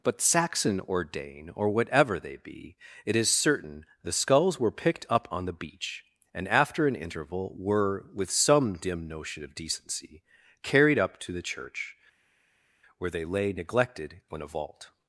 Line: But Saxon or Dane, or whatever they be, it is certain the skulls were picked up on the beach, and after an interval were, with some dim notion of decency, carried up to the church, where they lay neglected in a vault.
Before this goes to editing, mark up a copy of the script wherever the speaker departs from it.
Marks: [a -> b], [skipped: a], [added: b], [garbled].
But Saxon or Dane, or whatever they be, it is certain the skulls were picked up on the beach, and after an interval were, with some dim notion of decency, carried up to the church, where they lay neglected in a vault.